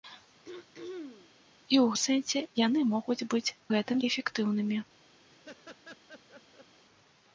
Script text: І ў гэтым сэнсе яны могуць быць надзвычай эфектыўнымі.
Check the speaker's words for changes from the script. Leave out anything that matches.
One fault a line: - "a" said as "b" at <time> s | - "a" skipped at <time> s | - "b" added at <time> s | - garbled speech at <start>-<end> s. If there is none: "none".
- "гэтым" skipped at 2.0 s
- "надзвычай" said as "гэтым" at 3.7 s